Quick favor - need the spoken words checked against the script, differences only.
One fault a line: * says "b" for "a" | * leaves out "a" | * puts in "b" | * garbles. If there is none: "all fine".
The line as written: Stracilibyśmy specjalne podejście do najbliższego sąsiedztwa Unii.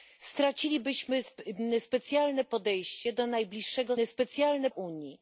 * says "specjalne" for "sąsiedztwa"